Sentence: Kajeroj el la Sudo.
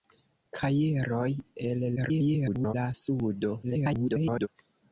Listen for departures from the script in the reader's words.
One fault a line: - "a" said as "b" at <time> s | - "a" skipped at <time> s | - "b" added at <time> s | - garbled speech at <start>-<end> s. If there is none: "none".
- garbled speech at 2.0-2.7 s
- garbled speech at 3.6-4.5 s